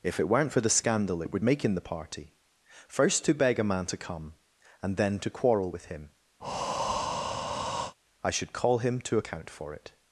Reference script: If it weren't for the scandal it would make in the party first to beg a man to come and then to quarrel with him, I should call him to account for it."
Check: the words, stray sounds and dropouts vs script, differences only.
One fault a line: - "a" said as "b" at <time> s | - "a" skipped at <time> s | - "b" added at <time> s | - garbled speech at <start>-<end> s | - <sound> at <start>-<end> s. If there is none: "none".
- breath at 6.4-7.9 s